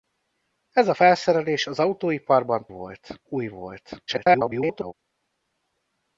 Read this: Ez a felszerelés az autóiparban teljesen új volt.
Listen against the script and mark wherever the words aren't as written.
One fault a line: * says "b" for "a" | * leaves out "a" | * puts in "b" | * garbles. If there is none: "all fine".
* says "volt" for "teljesen"
* garbles